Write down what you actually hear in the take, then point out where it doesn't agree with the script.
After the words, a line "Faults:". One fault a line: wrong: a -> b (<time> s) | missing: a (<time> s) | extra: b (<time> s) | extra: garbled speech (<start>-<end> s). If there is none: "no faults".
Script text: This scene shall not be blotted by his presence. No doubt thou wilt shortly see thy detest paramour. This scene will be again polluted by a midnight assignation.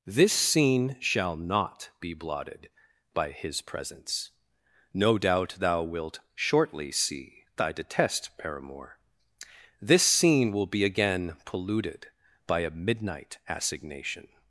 This scene shall not be blotted by his presence. No doubt thou wilt shortly see thy detest paramour. This scene will be again polluted by a midnight assignation.
Faults:
no faults